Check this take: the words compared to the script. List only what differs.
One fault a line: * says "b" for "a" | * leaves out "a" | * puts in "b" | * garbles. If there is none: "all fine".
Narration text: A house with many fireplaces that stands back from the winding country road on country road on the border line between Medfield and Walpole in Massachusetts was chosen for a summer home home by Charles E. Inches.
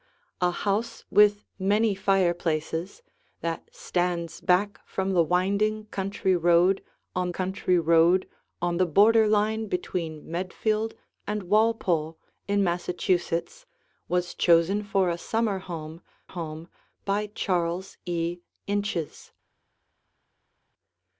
all fine